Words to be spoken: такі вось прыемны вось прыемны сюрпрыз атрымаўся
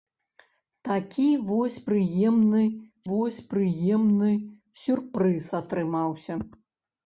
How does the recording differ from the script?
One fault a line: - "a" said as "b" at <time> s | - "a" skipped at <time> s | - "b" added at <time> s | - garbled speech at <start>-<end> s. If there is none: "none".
none